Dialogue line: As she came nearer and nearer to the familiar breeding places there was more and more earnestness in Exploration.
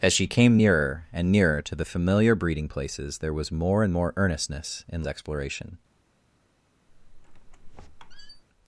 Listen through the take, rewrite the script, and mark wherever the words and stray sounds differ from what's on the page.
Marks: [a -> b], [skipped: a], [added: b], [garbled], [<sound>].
As she came nearer and nearer to the familiar breeding places there was more and more earnestness in Exploration. [squeak]